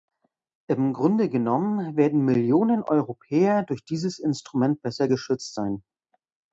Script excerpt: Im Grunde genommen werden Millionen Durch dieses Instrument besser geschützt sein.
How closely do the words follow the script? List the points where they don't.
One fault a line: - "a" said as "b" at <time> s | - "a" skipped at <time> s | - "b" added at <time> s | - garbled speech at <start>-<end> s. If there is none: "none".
- "Europäer" added at 2.8 s